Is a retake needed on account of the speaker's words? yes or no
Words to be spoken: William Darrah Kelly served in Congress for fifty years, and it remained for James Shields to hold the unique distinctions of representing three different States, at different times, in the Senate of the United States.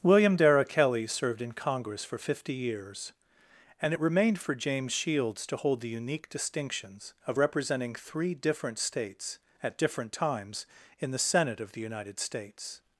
no